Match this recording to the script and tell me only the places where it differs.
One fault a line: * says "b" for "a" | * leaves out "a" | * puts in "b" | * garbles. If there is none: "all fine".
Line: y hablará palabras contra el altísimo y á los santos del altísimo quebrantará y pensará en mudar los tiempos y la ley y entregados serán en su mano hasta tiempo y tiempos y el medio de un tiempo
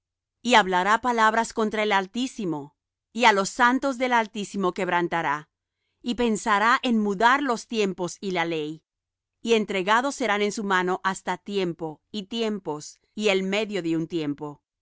all fine